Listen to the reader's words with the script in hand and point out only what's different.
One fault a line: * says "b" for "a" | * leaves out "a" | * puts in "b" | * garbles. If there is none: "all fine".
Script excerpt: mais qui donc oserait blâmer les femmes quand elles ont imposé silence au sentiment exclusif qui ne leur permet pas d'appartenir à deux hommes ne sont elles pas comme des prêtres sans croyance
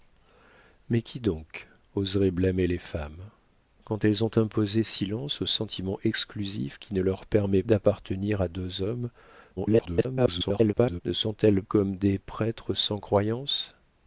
* leaves out "pas"
* garbles
* leaves out "pas"